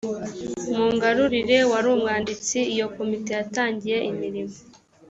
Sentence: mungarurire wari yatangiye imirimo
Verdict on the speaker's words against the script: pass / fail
fail